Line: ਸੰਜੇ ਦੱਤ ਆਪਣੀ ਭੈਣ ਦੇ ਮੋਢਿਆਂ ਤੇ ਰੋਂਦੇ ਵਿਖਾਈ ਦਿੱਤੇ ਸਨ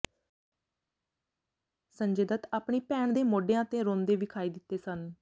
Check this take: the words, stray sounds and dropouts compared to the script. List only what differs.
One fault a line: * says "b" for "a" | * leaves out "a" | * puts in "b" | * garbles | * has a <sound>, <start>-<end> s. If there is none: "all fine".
all fine